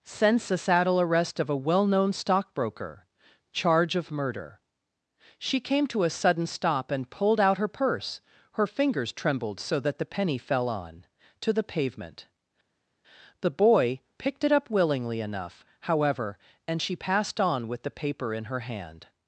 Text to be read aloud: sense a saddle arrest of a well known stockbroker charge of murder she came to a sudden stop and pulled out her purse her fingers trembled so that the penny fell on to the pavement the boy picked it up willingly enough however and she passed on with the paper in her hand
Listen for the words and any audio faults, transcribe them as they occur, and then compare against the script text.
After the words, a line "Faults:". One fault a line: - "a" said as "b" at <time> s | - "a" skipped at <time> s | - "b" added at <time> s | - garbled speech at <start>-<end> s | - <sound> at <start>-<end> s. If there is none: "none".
sense a saddle arrest of a well known stockbroker charge of murder she came to a sudden stop and pulled out her purse her fingers trembled so that the penny fell on to the pavement the boy picked it up willingly enough however and she passed on with the paper in her hand
Faults:
none